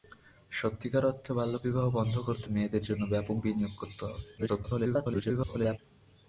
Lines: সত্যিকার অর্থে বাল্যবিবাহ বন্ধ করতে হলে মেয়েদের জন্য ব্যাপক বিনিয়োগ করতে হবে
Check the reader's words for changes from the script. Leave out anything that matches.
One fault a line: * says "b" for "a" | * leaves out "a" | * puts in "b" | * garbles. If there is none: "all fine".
* leaves out "হলে"
* garbles